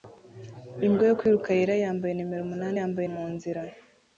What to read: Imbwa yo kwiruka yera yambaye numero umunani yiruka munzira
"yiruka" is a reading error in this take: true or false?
true